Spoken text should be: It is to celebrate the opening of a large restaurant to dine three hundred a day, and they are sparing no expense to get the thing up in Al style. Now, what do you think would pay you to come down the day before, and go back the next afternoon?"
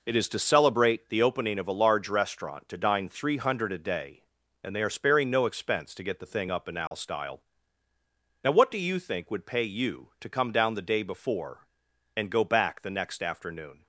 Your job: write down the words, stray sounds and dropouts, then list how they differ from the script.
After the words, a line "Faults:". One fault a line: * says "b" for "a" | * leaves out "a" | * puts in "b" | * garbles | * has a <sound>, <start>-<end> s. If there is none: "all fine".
It is to celebrate the opening of a large restaurant to dine three hundred a day, and they are sparing no expense to get the thing up in Al style. Now, what do you think would pay you to come down the day before, and go back the next afternoon?"
Faults:
* has a dropout, 6.9-6.9 s